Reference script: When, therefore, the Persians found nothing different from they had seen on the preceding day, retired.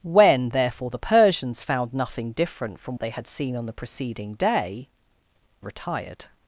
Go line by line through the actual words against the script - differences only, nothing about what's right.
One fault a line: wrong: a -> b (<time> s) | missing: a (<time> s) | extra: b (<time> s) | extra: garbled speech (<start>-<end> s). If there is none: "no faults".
no faults